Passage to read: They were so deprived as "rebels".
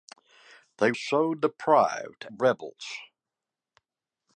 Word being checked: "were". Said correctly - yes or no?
no